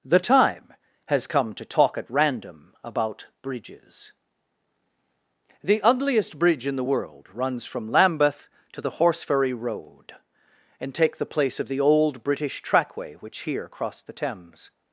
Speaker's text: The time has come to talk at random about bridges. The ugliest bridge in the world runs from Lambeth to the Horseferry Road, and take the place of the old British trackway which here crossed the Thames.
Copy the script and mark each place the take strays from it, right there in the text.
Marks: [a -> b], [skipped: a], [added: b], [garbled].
The time has come to talk at random about bridges. The ugliest bridge in the world runs from Lambeth to the Horseferry Road, and take the place of the old British trackway which here crossed the Thames.